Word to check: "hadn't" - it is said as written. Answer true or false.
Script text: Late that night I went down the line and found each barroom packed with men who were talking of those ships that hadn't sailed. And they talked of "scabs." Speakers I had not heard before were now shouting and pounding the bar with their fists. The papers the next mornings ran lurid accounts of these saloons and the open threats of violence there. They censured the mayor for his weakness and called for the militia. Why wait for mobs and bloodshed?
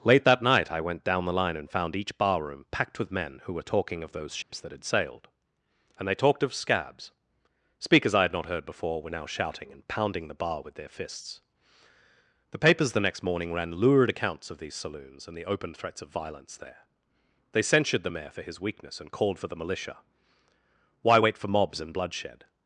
false